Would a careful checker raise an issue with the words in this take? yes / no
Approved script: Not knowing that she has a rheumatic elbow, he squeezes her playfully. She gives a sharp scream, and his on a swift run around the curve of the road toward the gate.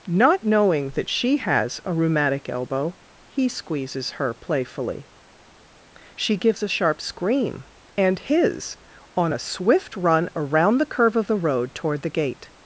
no